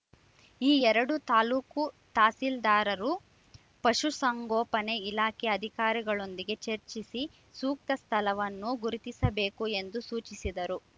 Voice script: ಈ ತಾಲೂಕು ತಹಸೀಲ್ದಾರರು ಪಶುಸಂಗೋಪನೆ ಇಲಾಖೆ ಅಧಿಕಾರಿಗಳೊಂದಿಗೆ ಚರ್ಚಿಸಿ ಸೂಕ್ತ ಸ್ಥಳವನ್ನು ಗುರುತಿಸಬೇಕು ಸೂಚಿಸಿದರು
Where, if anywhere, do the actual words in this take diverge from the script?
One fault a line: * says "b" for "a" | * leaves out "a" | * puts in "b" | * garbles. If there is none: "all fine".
* puts in "ಎರಡೂ"
* puts in "ಎಂದು"